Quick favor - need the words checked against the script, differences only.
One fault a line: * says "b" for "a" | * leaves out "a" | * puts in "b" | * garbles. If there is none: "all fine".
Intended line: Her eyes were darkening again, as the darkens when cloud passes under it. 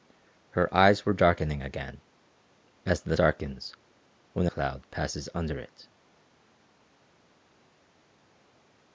all fine